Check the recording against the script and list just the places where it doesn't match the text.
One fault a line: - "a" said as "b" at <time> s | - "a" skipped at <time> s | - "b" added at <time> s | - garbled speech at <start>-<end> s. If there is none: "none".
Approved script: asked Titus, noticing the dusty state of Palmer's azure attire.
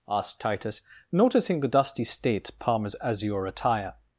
- "of" skipped at 2.5 s